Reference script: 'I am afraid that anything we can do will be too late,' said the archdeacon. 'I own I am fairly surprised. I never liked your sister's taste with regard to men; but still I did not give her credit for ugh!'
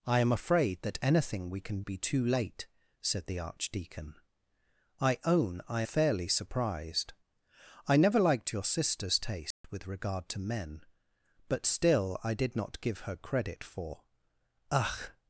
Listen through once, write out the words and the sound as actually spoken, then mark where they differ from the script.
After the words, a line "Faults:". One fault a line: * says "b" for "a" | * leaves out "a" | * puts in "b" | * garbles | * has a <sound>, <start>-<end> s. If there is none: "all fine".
'I am afraid that anything we can be too late,' said the archdeacon. 'I own I fairly surprised. I never liked your sister's taste with regard to men; but still I did not give her credit for ugh!'
Faults:
* leaves out "do will"
* leaves out "am"
* has a dropout, 9.5-9.6 s